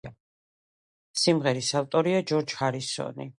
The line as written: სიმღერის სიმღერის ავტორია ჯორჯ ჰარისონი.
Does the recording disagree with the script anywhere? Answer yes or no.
yes